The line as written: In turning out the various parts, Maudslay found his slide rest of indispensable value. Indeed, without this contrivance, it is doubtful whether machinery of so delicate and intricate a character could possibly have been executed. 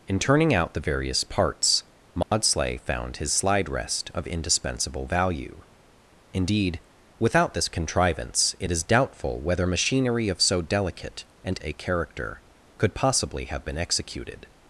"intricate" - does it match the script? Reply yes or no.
no